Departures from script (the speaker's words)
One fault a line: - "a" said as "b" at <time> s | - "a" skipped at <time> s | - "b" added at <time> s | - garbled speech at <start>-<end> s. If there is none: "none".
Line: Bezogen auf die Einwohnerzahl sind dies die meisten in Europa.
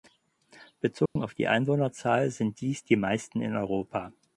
none